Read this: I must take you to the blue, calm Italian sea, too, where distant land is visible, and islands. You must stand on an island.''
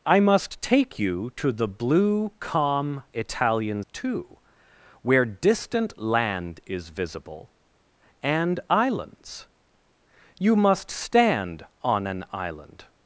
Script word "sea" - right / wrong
wrong